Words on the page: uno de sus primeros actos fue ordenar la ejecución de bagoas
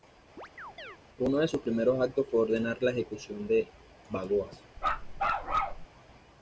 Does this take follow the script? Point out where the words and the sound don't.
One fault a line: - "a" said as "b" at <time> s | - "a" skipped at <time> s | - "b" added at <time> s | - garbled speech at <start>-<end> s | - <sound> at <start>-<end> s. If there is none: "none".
- chirp at 0.4-1.0 s
- bark at 4.8-5.9 s